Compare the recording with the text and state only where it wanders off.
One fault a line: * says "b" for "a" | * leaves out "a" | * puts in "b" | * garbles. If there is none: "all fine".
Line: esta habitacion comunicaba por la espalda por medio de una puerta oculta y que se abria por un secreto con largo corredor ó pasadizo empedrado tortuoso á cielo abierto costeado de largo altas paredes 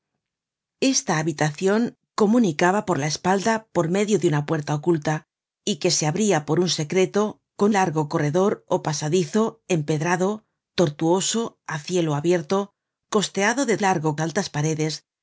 all fine